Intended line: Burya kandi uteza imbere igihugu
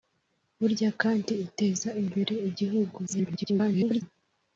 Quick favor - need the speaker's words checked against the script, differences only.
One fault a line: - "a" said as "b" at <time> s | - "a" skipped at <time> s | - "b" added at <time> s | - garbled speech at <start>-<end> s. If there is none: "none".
- garbled speech at 3.1-4.0 s